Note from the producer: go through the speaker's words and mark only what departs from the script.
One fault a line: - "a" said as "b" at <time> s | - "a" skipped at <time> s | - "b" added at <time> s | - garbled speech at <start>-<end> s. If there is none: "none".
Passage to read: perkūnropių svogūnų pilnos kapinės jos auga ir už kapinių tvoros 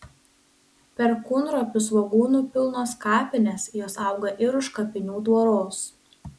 none